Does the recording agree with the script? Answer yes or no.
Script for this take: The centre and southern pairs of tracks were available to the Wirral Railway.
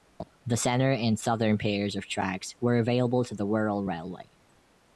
yes